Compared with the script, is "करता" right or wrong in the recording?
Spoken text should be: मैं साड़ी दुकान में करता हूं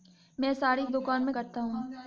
right